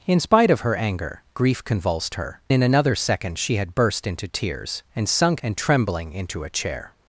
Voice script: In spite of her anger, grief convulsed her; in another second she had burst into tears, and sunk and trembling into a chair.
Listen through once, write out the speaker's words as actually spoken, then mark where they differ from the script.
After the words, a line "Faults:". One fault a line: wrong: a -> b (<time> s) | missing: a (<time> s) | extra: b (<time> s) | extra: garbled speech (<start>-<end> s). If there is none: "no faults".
In spite of her anger, grief convulsed her; in another second she had burst into tears, and sunk and trembling into a chair.
Faults:
no faults